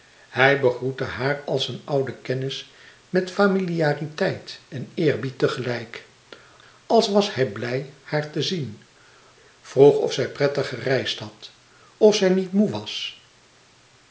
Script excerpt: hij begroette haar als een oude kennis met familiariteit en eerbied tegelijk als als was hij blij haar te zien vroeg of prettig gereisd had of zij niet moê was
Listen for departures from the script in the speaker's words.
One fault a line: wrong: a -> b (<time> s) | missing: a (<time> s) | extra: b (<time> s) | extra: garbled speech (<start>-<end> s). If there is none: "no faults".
missing: als (7.1 s)
extra: zij (10.1 s)